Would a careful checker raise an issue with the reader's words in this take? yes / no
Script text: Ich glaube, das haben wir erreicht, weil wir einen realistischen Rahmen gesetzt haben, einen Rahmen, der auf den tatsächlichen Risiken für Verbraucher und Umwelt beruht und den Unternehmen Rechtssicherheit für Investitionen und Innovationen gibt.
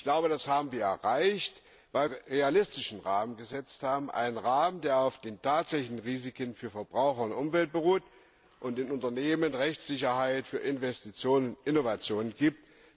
yes